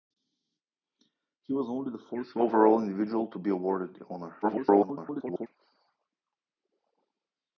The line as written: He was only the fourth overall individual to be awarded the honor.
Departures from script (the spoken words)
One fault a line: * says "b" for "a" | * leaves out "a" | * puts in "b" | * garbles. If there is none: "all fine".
* garbles